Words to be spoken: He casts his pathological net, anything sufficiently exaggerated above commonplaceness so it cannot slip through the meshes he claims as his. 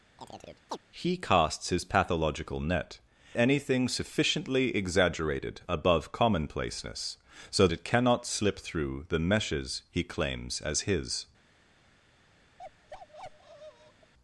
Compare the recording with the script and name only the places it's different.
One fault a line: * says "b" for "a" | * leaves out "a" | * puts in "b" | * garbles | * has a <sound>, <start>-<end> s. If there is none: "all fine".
* has a chirp, 0.2-0.8 s
* has a bark, 12.6-14.1 s